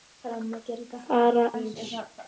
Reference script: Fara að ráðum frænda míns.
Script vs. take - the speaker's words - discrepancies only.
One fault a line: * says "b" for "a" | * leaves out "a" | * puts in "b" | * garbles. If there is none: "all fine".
* leaves out "að ráðum frænda"